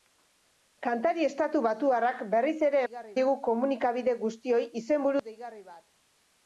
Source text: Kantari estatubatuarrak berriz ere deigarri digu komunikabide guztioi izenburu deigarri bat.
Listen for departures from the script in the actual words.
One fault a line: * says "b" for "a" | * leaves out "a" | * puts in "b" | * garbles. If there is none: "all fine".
all fine